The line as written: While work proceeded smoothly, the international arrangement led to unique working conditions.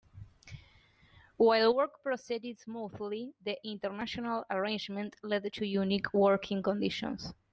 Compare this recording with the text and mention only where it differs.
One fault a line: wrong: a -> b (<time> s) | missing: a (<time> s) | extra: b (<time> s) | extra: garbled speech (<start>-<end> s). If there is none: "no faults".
no faults